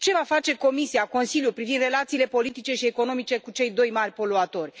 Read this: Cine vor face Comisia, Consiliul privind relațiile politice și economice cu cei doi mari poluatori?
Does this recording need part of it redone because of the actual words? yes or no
yes